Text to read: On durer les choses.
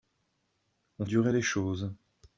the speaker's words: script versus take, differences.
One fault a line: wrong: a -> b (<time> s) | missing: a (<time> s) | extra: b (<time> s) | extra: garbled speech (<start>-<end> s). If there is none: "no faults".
no faults